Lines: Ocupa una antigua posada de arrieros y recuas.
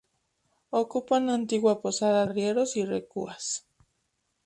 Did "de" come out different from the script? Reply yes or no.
yes